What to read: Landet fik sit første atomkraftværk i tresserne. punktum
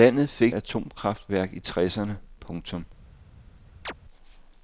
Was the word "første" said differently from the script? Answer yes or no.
yes